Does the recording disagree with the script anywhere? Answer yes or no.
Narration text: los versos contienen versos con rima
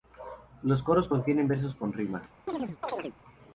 yes